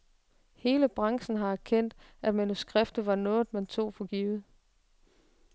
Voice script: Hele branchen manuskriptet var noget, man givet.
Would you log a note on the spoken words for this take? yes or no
yes